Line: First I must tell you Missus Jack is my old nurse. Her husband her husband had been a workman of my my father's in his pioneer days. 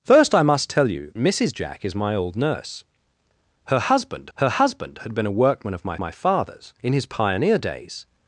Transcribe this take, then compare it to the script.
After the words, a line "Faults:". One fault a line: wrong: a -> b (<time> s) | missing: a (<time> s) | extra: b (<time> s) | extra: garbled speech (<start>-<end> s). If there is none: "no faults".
First I must tell you Missus Jack is my old nurse. Her husband her husband had been a workman of my my father's in his pioneer days.
Faults:
no faults